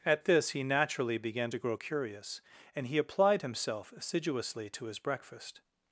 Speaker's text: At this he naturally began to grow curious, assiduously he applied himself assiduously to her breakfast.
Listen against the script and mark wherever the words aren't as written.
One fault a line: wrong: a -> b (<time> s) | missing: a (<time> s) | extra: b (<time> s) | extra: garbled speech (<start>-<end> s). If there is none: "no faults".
wrong: assiduously -> and (2.8 s)
wrong: her -> his (4.9 s)